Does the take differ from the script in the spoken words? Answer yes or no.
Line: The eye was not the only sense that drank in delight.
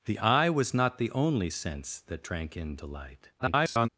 yes